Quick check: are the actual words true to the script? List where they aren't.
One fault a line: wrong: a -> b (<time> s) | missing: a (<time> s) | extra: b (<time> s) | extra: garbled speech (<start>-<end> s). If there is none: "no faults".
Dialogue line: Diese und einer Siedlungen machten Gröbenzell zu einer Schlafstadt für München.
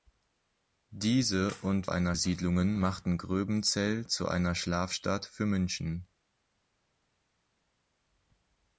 no faults